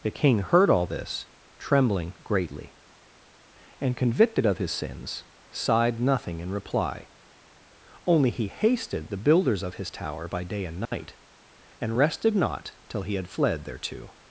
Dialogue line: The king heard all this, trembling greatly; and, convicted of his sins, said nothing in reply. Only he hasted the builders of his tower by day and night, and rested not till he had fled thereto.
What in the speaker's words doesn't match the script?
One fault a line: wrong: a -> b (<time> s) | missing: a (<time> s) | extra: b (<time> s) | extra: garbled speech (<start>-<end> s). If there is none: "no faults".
wrong: said -> sighed (5.5 s)